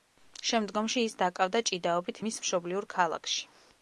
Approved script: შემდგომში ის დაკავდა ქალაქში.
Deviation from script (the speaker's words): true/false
true